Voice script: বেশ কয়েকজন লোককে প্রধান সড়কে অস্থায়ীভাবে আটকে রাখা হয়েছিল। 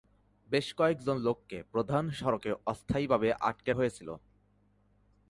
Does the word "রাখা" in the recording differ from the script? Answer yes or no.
yes